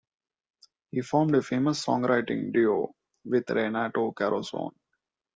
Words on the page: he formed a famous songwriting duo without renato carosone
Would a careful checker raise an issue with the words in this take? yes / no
yes